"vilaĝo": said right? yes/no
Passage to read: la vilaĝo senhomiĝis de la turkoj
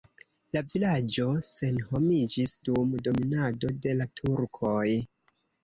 yes